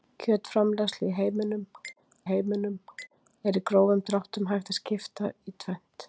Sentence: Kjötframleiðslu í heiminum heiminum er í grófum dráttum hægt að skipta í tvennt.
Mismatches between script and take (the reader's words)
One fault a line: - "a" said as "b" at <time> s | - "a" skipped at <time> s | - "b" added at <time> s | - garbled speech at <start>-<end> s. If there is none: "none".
none